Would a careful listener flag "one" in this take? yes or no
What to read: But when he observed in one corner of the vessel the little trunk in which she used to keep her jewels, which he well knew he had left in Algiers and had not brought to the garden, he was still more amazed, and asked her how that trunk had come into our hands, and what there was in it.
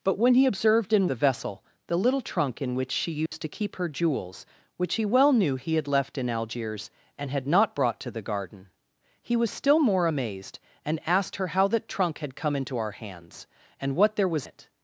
yes